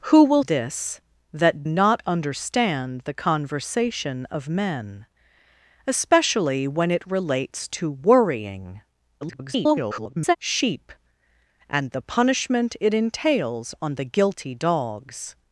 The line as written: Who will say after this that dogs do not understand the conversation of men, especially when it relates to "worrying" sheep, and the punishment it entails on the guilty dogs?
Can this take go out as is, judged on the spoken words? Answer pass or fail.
fail